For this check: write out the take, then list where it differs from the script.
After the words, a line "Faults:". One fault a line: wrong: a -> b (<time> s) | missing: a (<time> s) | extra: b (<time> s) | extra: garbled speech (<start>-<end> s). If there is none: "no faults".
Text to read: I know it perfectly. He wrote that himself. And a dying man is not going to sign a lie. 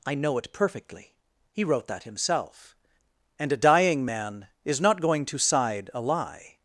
I know it perfectly. He wrote that himself. And a dying man is not going to side a lie.
Faults:
wrong: sign -> side (5.4 s)